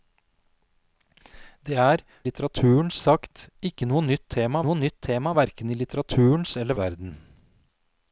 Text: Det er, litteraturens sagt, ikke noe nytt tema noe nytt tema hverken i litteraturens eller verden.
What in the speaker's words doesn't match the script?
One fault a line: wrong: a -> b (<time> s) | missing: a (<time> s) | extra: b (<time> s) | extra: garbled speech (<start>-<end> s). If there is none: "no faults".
no faults